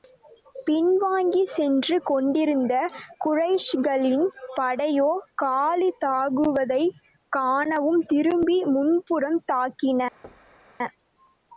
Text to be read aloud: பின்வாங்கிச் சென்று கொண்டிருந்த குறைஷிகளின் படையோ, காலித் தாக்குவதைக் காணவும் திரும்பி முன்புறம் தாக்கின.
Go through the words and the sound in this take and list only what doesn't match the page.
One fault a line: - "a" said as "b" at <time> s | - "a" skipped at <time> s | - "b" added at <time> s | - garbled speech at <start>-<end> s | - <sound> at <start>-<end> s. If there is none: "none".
- thud at 10.2-10.7 s